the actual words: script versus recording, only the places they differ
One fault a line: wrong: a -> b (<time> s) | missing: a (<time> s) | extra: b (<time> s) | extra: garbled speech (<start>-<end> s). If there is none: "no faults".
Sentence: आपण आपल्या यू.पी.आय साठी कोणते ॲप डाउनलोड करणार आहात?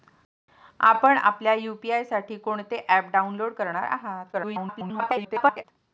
extra: garbled speech (4.3-5.6 s)